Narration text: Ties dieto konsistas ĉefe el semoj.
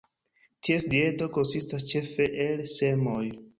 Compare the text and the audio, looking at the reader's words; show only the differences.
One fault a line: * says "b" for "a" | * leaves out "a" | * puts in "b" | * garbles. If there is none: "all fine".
all fine